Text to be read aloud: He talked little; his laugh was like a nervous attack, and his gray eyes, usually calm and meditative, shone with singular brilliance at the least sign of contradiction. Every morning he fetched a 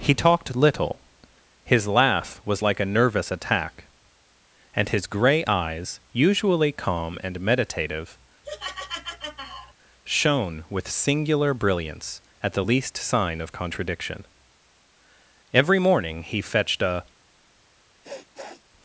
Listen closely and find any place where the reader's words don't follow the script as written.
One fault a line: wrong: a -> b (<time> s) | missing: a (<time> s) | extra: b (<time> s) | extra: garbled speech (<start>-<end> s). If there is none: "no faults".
no faults